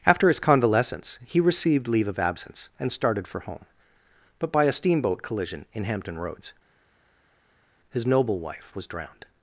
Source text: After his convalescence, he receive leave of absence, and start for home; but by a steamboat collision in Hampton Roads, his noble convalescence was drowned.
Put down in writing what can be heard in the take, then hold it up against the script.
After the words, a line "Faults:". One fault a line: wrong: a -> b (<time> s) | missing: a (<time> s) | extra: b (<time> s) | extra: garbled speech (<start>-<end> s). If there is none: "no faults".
After his convalescence, he received leave of absence, and started for home; but by a steamboat collision in Hampton Roads, his noble wife was drowned.
Faults:
wrong: receive -> received (1.4 s)
wrong: start -> started (2.9 s)
wrong: convalescence -> wife (8.4 s)